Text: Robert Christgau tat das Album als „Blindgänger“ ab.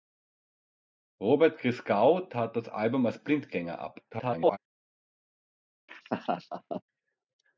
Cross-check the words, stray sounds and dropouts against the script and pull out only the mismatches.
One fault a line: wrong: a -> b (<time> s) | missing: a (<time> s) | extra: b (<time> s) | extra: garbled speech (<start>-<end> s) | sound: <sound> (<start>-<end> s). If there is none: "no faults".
extra: garbled speech (4.1-4.6 s)
sound: laugh (5.9-6.8 s)